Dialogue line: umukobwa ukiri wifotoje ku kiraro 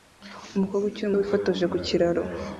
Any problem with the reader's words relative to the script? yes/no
no